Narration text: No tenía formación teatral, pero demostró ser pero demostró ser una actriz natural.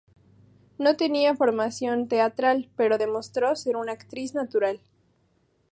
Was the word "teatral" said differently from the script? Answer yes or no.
no